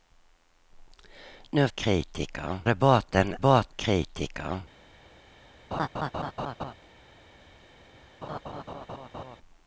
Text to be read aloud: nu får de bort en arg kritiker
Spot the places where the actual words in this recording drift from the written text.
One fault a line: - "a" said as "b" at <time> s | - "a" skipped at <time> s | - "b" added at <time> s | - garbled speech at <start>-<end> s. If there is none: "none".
- "får" said as "kritiker" at 1.7 s
- "arg" said as "bort" at 3.4 s